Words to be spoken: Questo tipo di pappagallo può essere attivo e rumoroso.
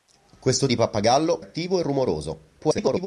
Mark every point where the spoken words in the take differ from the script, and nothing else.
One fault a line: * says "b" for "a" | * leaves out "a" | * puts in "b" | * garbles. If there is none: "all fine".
* leaves out "tipo"
* leaves out "può essere"
* garbles